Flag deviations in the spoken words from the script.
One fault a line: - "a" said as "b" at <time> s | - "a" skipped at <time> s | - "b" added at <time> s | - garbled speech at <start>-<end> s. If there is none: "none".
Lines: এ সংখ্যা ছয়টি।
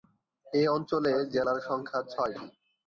- "অঞ্চলে জেলার" added at 0.7 s